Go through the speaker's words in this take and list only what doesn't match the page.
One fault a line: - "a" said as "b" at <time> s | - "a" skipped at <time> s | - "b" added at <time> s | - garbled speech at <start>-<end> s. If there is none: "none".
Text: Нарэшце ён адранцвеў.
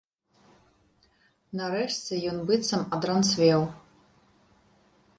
- "быццам" added at 2.5 s